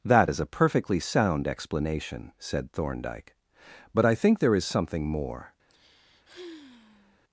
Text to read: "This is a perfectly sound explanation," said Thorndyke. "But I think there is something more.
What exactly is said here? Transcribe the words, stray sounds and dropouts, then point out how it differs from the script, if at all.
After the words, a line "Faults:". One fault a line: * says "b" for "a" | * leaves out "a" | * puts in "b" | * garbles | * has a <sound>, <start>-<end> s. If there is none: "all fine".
"That is a perfectly sound explanation," said Thorndyke. "But I think there is something more.
Faults:
* says "That" for "This"
* has a sigh, 5.7-7.2 s